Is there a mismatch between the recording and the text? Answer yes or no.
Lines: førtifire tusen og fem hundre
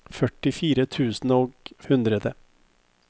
yes